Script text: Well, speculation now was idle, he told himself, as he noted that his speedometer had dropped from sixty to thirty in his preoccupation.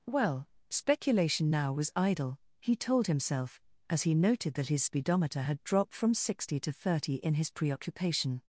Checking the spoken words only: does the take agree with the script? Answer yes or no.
yes